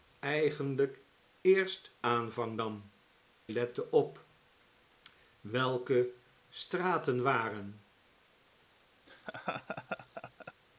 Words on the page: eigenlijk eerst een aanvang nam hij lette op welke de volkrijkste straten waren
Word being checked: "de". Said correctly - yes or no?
no